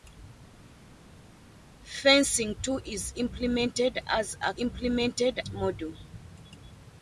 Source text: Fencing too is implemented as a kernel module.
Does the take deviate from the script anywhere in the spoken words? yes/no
yes